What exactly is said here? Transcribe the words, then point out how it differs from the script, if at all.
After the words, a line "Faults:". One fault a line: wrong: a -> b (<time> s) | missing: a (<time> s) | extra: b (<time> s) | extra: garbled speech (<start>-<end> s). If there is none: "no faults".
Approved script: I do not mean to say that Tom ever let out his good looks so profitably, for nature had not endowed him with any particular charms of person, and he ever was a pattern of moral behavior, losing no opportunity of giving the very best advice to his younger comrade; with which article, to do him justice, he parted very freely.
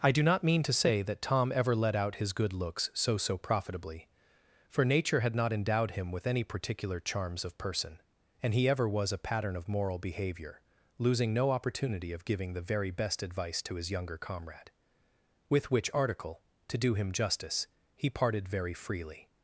I do not mean to say that Tom ever let out his good looks so so profitably, for nature had not endowed him with any particular charms of person, and he ever was a pattern of moral behavior, losing no opportunity of giving the very best advice to his younger comrade; with which article, to do him justice, he parted very freely.
Faults:
extra: so (3.2 s)